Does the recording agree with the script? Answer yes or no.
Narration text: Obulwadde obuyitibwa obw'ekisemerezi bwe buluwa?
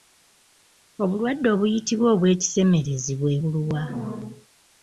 yes